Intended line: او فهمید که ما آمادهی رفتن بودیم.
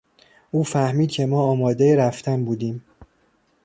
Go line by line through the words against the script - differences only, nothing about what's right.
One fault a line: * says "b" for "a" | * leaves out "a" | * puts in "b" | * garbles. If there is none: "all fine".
all fine